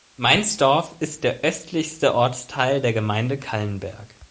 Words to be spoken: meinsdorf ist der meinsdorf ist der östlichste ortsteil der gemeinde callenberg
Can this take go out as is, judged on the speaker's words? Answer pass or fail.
fail